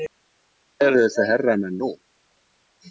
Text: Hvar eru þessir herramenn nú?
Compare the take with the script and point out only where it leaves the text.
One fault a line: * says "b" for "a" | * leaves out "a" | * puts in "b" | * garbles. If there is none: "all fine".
all fine